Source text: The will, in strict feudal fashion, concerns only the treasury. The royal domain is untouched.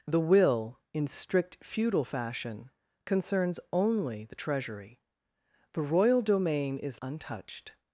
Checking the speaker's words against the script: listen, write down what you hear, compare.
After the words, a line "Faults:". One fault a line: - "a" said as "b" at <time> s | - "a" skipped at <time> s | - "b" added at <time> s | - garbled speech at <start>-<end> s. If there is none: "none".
The will, in strict feudal fashion, concerns only the treasury. The royal domain is untouched.
Faults:
none